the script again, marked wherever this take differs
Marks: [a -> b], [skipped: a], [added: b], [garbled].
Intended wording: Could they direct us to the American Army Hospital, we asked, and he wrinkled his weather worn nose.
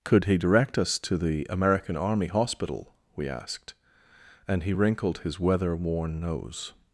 Could [they -> he] direct us to the American Army Hospital, we asked, and he wrinkled his weather worn nose.